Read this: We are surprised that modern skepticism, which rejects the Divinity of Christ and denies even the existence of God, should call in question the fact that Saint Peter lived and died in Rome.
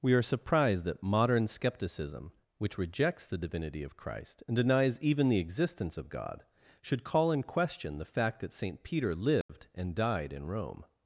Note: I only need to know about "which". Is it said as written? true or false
true